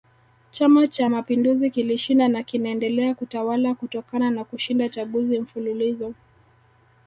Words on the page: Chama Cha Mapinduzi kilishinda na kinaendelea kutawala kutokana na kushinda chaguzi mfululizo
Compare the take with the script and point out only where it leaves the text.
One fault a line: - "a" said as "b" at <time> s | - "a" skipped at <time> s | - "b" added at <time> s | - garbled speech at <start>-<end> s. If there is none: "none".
none